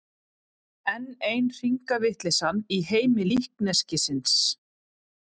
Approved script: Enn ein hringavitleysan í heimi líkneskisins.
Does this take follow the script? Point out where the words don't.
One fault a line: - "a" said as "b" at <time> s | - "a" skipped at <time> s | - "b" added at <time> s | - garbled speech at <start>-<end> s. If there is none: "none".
none